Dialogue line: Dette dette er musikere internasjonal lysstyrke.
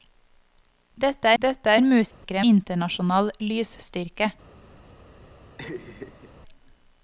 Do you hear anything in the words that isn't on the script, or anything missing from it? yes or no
no